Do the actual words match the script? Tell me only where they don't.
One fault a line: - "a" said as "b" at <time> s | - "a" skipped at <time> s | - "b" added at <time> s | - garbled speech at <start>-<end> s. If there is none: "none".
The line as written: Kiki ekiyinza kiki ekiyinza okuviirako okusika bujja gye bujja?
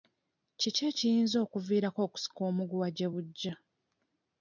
- "kiki ekiyinza" skipped at 1.4 s
- "bujja" said as "omuguwa" at 2.5 s